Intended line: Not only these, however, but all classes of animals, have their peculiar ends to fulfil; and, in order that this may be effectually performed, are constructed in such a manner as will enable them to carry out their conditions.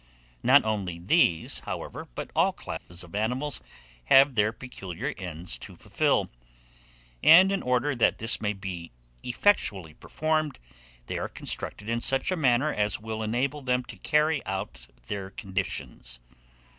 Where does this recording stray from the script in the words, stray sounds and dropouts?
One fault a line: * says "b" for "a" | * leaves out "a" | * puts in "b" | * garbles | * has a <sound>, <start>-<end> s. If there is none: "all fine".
* has a dropout, 2.8-2.9 s
* puts in "they"